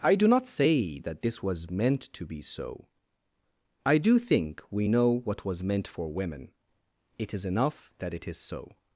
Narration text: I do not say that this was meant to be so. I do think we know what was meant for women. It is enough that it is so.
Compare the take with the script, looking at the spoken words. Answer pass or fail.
pass